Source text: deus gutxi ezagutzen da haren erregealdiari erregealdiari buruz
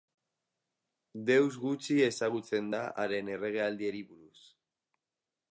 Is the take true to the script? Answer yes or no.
no